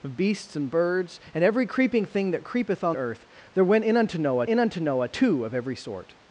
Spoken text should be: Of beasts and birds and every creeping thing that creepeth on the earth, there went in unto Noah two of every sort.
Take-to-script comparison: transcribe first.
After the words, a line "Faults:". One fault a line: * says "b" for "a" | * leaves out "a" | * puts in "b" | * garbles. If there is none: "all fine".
Of beasts and birds and every creeping thing that creepeth on earth, there went in unto Noah in unto Noah two of every sort.
Faults:
* leaves out "the"
* puts in "in unto Noah"